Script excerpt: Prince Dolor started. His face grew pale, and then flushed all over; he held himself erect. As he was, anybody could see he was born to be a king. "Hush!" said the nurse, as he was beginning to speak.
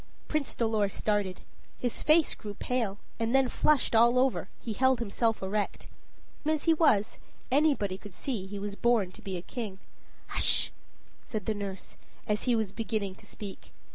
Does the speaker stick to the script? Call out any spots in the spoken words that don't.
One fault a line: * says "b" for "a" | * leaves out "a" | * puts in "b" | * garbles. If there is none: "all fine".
all fine